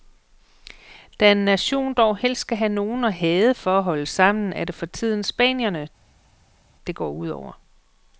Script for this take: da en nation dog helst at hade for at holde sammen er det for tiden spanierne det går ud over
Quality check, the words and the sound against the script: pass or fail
fail